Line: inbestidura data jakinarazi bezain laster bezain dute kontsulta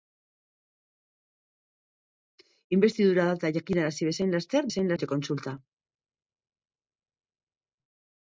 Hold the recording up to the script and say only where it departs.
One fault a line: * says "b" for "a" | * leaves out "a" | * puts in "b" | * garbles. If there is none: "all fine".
all fine